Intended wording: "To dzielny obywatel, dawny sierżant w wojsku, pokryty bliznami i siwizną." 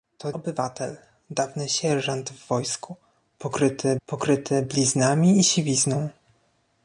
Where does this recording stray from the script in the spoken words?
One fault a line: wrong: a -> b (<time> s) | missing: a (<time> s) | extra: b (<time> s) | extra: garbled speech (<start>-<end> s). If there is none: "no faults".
missing: dzielny (0.3 s)
extra: pokryty (4.1 s)